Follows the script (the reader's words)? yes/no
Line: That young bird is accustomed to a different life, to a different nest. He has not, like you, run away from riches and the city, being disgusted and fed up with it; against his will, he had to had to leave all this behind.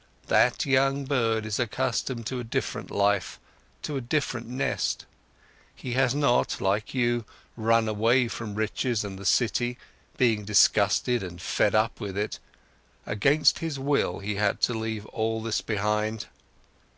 no